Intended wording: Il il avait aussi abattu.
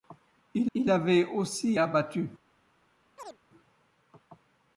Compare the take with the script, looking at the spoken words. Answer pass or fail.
pass